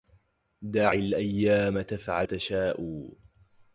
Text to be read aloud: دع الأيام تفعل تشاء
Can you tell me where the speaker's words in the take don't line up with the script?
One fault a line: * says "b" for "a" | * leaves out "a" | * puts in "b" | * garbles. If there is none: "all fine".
all fine